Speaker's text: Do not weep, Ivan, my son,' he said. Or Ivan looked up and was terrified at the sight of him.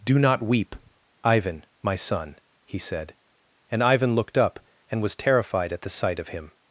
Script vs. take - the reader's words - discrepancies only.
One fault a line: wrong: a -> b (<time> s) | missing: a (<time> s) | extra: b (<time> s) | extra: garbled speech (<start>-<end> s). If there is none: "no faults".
wrong: Or -> And (3.7 s)